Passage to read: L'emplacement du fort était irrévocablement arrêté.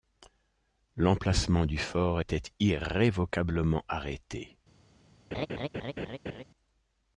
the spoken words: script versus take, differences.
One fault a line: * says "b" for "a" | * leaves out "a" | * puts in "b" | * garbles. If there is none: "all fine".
all fine